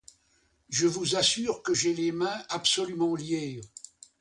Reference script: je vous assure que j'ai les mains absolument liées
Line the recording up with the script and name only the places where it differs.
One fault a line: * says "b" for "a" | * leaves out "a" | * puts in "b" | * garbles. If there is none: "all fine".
all fine